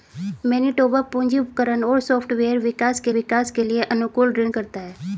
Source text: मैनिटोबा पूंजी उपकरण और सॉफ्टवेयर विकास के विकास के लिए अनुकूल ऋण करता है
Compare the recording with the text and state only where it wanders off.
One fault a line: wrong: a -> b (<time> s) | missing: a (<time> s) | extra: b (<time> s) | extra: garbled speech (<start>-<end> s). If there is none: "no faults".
no faults